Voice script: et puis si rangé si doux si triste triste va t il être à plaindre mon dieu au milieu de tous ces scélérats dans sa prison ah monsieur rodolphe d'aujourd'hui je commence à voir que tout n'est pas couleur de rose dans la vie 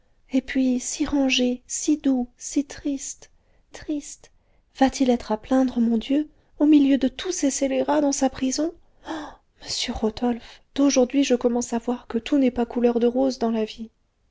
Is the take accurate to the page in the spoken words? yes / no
yes